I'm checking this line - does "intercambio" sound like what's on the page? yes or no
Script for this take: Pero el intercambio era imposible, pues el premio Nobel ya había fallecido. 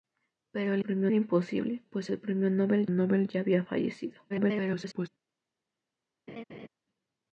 no